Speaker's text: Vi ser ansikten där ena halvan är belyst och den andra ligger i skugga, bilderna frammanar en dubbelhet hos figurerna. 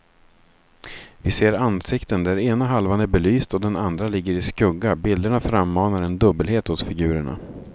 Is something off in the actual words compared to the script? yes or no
no